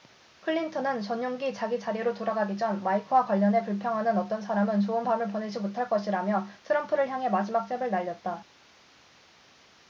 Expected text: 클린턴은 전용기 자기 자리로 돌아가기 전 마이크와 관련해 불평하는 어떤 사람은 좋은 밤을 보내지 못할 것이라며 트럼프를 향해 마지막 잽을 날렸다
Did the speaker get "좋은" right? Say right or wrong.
right